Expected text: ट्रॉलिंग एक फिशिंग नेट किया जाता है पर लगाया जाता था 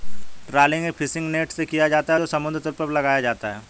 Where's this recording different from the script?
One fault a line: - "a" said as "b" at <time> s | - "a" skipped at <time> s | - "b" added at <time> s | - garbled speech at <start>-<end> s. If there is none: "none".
- "से" added at 1.5 s
- "जो समुद्र तल" added at 2.2 s
- "था" said as "है" at 3.5 s